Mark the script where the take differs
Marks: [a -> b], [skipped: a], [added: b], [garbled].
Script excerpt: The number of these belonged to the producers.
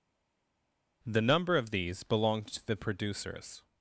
The number of these belonged to the producers.